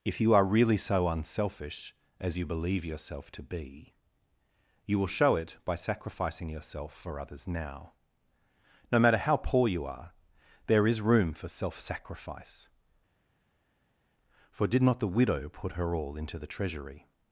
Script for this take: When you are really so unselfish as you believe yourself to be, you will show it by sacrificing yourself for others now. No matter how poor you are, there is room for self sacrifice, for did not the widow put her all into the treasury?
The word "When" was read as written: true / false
false